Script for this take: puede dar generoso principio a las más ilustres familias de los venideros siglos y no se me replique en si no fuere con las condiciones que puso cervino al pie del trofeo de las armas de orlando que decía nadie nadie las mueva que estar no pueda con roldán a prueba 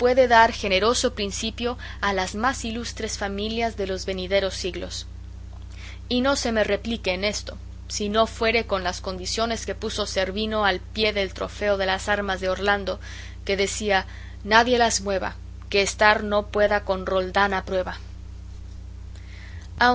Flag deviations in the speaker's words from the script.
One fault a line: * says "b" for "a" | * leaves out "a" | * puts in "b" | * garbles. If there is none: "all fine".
* puts in "esto"
* leaves out "nadie"